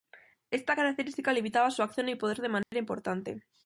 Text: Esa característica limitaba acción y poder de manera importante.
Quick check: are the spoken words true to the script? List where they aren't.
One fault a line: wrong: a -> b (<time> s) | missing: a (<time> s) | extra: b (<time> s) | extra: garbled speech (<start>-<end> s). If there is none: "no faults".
wrong: Esa -> Esta (0.5 s)
extra: su (1.7 s)